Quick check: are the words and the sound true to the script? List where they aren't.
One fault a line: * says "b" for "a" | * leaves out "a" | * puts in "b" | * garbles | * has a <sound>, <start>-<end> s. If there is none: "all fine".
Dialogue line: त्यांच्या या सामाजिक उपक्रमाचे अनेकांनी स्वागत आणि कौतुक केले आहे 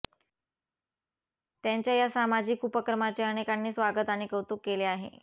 all fine